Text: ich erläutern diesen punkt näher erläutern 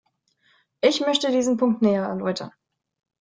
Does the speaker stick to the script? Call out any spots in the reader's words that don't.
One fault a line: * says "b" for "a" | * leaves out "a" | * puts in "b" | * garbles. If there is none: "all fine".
* says "möchte" for "erläutern"